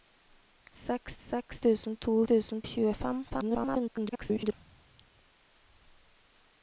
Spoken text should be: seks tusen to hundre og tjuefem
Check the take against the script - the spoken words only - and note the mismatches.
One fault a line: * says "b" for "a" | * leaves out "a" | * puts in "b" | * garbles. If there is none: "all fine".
* puts in "seks"
* says "tusen" for "hundre"
* garbles